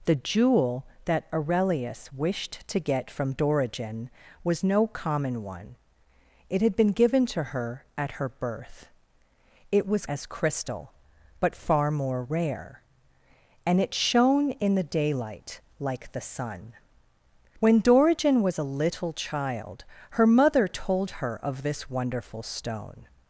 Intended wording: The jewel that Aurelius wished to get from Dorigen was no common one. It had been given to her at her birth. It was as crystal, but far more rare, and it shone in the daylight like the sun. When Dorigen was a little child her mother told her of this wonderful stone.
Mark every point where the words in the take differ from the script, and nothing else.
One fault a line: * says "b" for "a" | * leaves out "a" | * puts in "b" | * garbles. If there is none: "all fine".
all fine